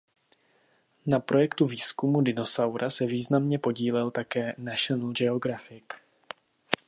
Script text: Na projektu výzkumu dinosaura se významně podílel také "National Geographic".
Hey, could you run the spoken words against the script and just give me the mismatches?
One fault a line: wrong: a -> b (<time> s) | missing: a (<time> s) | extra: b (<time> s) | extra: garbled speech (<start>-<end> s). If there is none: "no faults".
no faults